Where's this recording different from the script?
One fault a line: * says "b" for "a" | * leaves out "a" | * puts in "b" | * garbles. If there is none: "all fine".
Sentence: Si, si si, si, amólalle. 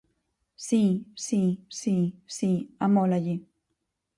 all fine